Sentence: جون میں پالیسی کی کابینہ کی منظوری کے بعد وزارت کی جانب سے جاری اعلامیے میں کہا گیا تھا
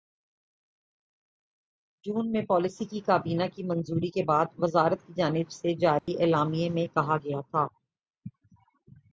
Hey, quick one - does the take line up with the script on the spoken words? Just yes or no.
yes